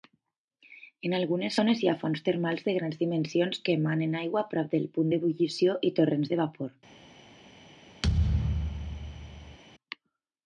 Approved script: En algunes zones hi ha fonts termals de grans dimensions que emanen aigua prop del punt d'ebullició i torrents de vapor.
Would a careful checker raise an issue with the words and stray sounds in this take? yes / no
yes